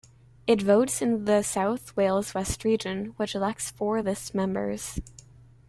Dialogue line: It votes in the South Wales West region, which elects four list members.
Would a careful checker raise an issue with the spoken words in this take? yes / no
no